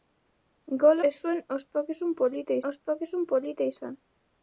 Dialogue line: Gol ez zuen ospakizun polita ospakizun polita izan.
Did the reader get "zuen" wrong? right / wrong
right